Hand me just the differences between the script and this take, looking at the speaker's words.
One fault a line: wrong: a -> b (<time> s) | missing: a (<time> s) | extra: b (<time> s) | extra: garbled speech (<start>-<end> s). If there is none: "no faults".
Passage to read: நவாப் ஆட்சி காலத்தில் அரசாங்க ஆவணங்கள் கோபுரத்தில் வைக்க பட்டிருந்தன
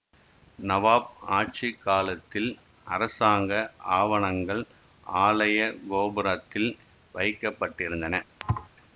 extra: ஆலய (5.1 s)